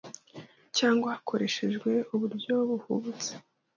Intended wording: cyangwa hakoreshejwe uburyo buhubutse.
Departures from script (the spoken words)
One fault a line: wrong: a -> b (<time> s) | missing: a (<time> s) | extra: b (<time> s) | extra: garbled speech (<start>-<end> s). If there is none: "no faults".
no faults